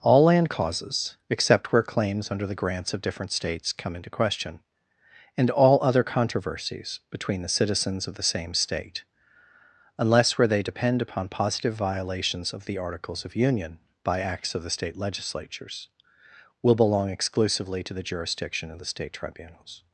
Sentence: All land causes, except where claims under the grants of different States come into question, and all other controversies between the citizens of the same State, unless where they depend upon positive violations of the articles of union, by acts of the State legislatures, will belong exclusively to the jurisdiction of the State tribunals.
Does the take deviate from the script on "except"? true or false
false